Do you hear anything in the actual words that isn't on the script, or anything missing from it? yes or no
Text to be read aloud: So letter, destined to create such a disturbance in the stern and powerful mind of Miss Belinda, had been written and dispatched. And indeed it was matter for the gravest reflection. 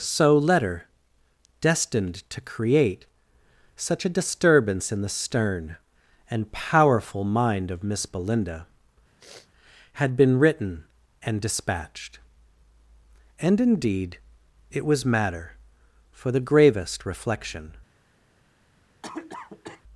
no